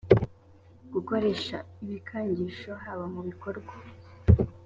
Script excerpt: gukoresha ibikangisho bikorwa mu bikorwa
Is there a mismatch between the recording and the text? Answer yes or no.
yes